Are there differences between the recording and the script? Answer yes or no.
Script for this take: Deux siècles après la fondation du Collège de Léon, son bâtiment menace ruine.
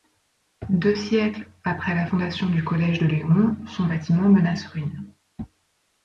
no